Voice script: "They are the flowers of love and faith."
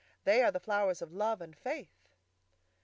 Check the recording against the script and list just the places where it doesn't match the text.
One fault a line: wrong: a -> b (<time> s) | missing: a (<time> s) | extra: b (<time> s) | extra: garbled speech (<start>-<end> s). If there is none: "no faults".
no faults